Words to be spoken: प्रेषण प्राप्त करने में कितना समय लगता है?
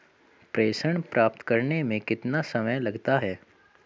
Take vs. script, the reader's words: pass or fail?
pass